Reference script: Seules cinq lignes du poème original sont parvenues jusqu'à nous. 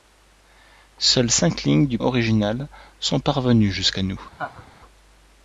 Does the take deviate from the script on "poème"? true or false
true